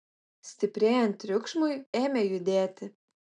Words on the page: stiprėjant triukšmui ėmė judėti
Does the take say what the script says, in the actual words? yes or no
yes